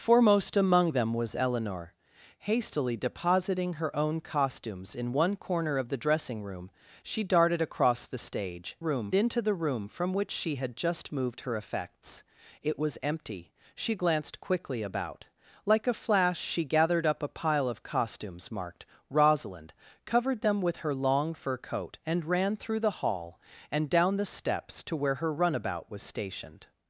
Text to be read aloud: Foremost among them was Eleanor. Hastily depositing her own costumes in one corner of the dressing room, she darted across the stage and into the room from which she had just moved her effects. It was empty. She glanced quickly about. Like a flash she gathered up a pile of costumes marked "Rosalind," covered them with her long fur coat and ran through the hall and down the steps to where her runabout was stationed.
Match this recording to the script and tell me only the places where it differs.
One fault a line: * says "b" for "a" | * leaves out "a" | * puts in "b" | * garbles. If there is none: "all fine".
* says "room" for "and"